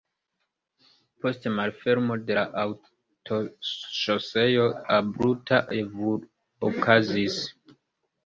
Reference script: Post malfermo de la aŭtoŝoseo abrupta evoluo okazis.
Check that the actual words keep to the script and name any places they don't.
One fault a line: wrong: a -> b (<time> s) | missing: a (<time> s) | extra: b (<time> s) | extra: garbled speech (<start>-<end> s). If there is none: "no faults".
missing: evoluo (5.6 s)